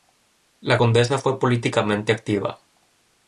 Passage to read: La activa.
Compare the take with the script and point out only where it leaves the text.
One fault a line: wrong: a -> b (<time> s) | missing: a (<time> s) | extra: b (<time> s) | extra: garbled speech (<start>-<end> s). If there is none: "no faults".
extra: condesa fue políticamente (0.8 s)